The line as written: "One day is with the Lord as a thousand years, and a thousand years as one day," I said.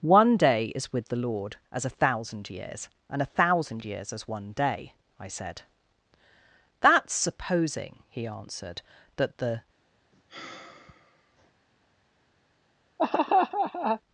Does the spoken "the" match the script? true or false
true